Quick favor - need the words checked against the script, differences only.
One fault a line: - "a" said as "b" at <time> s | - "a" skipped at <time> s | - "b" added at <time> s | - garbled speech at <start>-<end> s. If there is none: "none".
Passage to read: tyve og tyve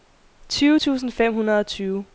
- "tusind fem hundrede" added at 0.8 s